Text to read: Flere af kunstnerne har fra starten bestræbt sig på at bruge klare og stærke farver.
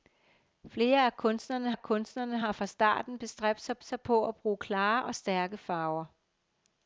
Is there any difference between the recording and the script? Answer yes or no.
yes